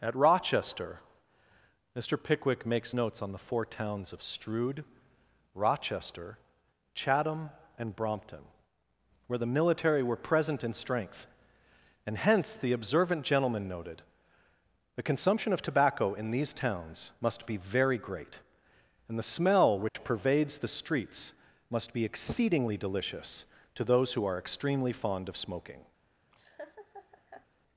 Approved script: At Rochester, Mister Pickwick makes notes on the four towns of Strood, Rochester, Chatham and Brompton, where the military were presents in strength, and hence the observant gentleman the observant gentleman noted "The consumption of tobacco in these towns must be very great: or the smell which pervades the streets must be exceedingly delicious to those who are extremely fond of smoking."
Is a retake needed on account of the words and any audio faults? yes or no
yes